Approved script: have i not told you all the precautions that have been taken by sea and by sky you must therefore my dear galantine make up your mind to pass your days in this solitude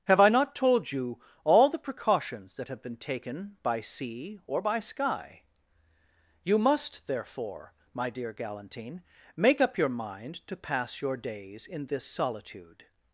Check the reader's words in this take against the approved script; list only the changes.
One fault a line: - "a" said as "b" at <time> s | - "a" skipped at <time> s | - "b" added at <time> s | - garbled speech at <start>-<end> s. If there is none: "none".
- "and" said as "or" at 4.5 s